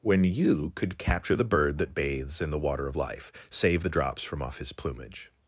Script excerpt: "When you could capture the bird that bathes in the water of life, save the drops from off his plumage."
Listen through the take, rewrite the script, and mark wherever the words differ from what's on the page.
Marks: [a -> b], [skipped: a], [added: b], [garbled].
"When you could capture the bird that bathes in the water of life, save the drops from off his plumage."